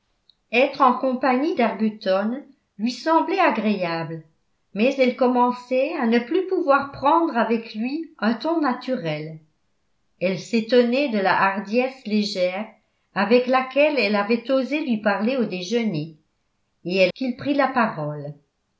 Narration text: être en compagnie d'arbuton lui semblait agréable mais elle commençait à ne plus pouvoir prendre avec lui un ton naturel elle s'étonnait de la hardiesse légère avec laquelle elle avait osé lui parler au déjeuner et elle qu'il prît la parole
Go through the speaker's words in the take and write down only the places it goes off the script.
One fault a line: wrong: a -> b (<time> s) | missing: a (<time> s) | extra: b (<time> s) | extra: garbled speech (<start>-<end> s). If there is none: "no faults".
no faults